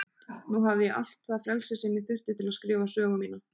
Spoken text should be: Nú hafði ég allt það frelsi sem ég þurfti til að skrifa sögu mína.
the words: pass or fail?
pass